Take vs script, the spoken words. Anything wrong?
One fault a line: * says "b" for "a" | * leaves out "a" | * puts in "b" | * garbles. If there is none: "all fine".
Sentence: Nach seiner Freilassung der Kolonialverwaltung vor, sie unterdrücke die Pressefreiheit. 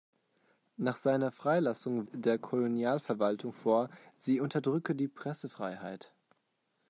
all fine